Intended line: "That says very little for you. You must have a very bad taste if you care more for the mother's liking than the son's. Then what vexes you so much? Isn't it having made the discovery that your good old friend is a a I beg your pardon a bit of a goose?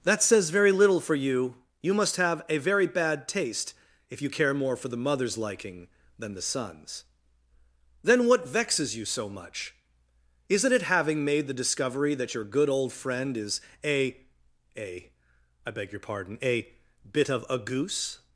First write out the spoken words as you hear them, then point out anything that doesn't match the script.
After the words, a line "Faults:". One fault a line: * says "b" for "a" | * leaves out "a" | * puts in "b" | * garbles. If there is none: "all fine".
"That says very little for you. You must have a very bad taste if you care more for the mother's liking than the son's. Then what vexes you so much? Isn't it having made the discovery that your good old friend is a a I beg your pardon a bit of a goose?
Faults:
all fine